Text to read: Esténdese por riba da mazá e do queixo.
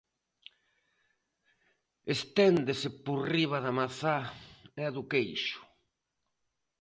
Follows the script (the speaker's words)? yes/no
yes